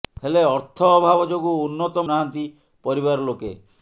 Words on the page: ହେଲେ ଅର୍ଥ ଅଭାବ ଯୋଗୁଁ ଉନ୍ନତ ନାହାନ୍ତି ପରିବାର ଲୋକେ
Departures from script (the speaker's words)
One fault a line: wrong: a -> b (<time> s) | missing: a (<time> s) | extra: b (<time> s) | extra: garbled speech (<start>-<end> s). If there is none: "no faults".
no faults